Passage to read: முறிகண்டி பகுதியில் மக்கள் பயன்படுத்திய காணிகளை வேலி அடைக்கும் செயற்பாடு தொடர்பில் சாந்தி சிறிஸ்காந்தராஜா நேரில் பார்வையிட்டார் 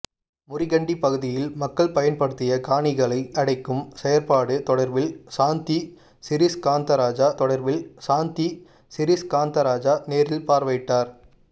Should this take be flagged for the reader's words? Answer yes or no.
yes